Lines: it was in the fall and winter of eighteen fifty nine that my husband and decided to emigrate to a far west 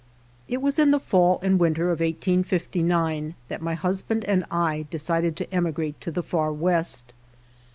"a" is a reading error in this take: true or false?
true